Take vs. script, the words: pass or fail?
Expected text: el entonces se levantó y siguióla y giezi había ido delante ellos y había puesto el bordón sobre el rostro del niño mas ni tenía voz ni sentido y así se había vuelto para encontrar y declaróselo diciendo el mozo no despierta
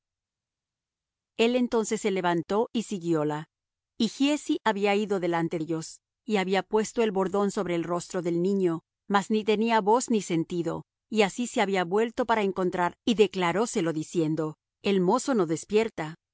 pass